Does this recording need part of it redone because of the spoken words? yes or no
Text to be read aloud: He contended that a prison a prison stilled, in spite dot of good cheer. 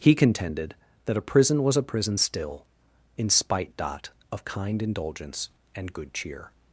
yes